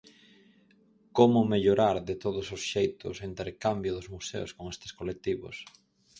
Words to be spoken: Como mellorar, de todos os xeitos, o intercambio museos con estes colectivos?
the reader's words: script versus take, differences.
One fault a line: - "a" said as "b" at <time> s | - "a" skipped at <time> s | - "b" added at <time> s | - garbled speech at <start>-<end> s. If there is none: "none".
- "dos" added at 4.0 s